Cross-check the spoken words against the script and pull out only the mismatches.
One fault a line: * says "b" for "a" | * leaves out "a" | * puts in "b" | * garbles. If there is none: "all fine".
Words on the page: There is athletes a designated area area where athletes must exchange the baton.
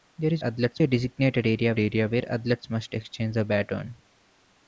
all fine